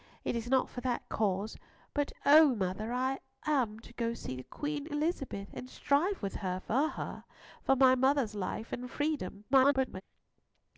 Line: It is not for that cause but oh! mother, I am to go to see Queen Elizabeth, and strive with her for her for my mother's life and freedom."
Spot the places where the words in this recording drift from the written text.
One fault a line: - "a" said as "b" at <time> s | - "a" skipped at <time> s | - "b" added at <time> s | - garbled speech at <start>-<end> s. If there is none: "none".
- garbled speech at 9.5-10.0 s